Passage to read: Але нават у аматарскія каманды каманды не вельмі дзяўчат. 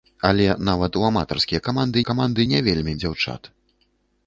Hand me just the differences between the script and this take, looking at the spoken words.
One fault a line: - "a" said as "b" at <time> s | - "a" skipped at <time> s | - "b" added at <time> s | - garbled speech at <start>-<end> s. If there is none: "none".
none